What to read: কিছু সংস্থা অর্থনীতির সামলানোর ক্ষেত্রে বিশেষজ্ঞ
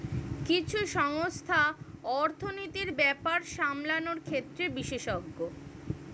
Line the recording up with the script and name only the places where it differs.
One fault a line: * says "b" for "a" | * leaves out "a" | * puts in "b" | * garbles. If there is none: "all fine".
* puts in "ব্যাপার"